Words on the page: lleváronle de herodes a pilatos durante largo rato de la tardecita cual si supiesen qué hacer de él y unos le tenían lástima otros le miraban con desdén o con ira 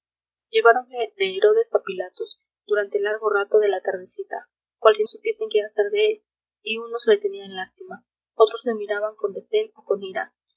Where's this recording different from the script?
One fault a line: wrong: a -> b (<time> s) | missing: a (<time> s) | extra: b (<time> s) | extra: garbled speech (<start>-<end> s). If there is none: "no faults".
no faults